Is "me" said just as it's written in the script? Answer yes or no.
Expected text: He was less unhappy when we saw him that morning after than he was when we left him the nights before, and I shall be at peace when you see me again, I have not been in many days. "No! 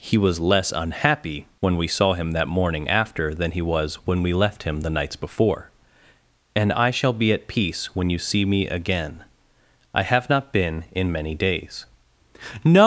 yes